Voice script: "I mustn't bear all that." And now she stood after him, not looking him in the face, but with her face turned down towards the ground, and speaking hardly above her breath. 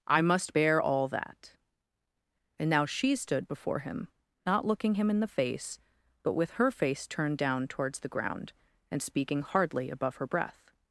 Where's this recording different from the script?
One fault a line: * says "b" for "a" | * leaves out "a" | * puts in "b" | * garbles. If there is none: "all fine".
* says "must" for "mustn't"
* says "before" for "after"